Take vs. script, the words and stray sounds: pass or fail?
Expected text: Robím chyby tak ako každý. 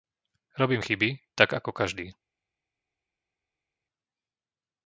pass